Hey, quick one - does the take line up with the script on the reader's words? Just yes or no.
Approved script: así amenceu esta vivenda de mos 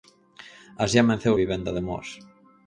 no